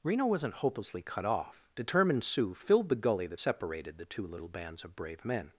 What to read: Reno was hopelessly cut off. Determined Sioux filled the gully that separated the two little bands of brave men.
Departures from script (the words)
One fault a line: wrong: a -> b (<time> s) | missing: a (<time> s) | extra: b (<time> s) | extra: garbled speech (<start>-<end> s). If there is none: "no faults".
wrong: was -> wasn't (0.2 s)